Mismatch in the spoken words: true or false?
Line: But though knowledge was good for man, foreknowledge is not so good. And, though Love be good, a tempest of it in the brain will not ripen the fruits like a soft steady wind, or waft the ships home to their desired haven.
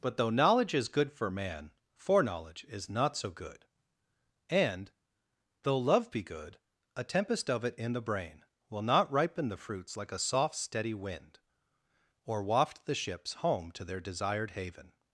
true